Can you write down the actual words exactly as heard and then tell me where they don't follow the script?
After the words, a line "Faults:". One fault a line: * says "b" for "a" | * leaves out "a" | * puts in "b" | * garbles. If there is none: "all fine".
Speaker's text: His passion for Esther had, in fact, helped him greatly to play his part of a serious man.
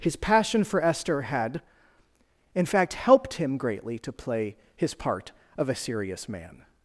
His passion for Esther had, in fact, helped him greatly to play his part of a serious man.
Faults:
all fine